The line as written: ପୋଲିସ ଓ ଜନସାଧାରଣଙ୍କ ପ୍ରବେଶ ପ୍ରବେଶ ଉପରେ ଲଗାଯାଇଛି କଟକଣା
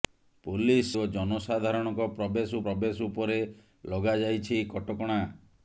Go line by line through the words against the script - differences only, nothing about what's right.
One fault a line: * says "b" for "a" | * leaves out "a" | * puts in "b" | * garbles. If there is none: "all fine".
all fine